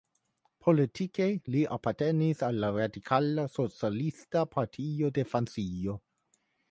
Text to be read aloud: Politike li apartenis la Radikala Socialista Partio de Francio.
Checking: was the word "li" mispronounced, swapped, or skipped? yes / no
no